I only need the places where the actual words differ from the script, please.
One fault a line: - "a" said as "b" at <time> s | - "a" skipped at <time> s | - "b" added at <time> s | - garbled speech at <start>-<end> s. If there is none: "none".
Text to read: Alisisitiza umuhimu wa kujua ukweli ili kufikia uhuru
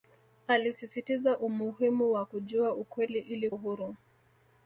- "kufikia" skipped at 3.5 s